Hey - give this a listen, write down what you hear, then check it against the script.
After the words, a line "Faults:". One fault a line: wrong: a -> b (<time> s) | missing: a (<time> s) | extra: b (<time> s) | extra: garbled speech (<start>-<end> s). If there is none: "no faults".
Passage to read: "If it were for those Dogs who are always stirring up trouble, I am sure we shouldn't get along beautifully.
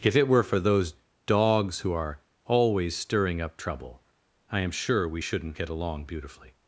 "If it were for those Dogs who are always stirring up trouble, I am sure we shouldn't get along beautifully.
Faults:
no faults